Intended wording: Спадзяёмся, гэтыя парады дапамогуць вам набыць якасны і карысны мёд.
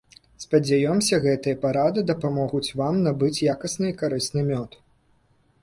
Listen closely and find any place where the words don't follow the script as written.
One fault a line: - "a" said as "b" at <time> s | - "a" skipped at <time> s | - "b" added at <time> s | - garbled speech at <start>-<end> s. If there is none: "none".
none